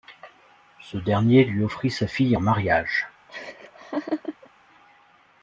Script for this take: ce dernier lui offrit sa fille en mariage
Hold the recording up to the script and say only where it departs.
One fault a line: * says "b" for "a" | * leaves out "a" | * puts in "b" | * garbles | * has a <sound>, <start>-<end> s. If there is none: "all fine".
* has a laugh, 3.3-4.5 s